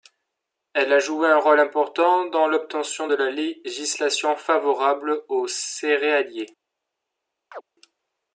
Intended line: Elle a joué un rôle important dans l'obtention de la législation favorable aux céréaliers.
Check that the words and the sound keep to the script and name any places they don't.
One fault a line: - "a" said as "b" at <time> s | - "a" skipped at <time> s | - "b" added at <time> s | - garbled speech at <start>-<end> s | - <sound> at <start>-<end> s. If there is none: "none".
- chirp at 7.5-7.6 s